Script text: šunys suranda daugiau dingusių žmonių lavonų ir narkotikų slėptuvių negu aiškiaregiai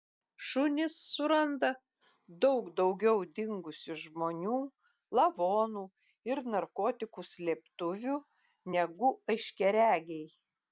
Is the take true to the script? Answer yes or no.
no